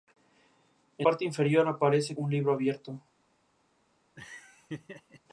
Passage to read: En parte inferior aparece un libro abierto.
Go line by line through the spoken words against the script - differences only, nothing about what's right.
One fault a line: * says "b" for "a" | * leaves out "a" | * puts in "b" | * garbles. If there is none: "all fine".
all fine